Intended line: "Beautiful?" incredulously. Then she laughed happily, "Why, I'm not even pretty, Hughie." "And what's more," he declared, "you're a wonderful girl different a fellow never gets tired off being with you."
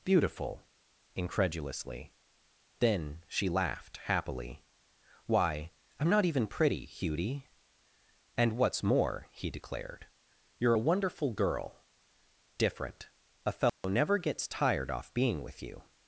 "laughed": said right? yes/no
yes